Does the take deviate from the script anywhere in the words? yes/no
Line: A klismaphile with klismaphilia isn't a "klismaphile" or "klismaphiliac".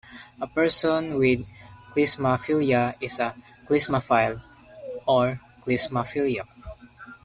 yes